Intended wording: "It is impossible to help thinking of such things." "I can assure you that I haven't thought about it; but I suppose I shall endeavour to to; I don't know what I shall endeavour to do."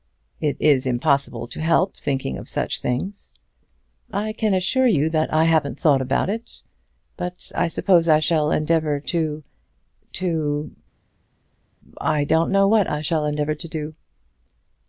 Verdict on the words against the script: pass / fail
pass